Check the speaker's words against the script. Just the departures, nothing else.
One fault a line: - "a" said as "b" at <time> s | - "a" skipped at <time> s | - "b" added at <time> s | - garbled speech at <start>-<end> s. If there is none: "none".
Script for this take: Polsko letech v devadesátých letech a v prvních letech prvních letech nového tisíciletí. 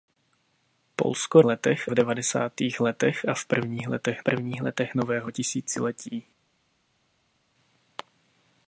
none